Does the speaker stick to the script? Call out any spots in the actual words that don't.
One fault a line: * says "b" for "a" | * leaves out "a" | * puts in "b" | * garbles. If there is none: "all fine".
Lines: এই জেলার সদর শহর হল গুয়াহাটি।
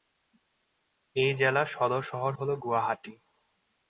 all fine